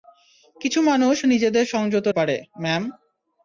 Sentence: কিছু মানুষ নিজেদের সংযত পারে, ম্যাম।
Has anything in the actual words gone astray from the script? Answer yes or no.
no